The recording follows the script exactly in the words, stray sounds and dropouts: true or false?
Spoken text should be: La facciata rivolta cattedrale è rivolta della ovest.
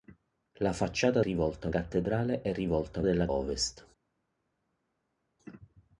true